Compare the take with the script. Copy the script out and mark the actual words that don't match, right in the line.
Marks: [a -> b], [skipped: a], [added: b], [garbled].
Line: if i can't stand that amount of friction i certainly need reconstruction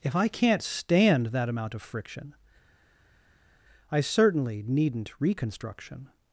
if i can't stand that amount of friction i certainly [need -> needn't] reconstruction